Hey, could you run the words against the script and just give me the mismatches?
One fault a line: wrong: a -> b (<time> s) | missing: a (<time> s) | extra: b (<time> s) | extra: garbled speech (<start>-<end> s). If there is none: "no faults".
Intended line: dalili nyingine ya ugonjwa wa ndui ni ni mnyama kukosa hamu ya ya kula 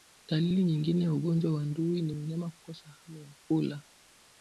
missing: ni (2.1 s)
missing: ya (3.3 s)